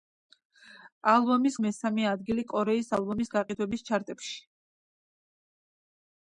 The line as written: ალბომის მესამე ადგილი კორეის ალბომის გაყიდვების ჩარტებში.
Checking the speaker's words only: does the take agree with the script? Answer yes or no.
yes